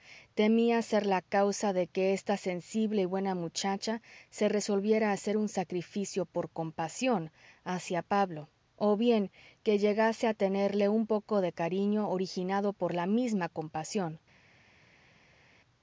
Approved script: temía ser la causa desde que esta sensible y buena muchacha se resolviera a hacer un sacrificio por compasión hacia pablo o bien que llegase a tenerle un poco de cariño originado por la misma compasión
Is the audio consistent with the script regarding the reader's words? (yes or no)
no